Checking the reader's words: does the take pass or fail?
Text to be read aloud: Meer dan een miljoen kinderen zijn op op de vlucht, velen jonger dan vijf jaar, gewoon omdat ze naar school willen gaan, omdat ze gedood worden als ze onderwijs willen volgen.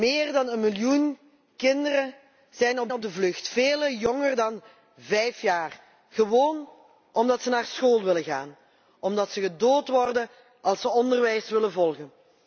pass